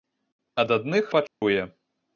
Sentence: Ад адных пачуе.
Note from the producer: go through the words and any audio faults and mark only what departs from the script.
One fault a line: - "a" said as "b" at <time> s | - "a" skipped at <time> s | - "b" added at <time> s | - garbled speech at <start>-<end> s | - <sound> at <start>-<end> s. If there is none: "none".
- dropout at 1.3-1.4 s